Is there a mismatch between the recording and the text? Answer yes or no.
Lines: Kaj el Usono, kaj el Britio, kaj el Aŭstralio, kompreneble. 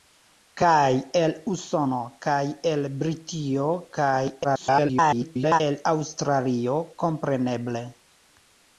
yes